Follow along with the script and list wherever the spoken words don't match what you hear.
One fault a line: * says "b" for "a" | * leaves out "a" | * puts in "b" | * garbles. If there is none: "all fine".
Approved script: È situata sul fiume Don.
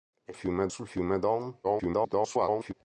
* says "fiume" for "situata"
* garbles